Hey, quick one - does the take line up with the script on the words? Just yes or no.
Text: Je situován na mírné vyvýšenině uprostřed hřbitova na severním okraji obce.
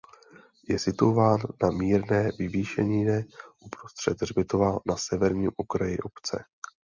yes